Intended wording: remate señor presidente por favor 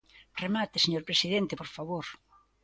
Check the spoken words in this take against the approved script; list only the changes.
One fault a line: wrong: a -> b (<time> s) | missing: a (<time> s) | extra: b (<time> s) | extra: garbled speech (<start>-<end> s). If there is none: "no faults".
no faults